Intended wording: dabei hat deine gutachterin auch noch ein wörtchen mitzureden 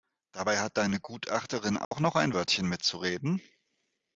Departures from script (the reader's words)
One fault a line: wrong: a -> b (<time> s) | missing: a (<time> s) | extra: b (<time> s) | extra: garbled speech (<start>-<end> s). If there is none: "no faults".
no faults